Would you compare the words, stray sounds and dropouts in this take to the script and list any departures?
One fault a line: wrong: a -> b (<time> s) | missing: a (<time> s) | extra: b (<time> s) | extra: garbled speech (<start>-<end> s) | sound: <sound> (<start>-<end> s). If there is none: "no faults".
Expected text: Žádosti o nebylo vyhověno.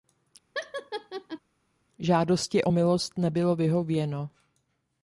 sound: laugh (0.5-1.4 s)
extra: milost (2.7 s)